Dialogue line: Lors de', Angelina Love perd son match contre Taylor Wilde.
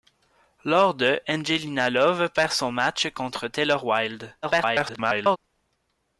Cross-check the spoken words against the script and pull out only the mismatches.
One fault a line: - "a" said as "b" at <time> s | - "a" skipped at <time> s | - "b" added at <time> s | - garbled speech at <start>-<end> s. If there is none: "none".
- garbled speech at 4.4-5.4 s